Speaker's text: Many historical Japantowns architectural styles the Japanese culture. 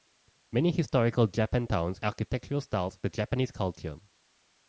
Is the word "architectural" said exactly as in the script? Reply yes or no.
yes